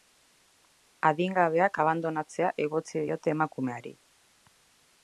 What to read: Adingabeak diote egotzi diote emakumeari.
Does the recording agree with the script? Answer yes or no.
no